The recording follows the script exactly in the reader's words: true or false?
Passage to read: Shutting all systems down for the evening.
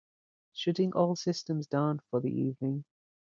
true